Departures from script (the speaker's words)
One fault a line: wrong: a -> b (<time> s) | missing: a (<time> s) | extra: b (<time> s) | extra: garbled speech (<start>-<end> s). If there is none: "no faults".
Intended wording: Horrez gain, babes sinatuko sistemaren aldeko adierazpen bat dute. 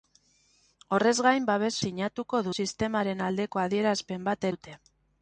no faults